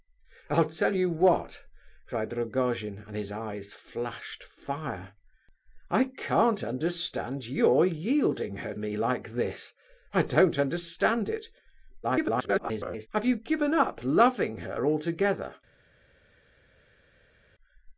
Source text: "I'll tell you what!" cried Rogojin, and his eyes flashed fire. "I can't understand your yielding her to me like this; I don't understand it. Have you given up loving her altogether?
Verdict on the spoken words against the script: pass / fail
fail